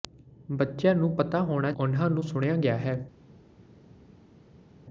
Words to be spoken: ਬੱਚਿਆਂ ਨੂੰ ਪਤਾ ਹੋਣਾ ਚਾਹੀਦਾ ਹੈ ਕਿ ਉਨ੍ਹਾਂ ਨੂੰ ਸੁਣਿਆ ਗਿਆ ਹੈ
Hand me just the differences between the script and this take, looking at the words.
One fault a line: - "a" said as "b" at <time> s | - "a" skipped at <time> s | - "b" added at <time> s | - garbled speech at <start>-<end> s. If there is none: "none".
- "ਚਾਹੀਦਾ ਹੈ ਕਿ" skipped at 1.7 s